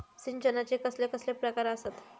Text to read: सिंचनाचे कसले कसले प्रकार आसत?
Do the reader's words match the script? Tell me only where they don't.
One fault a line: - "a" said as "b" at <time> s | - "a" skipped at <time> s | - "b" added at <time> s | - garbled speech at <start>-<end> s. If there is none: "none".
none